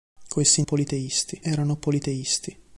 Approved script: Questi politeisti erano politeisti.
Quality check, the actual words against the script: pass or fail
pass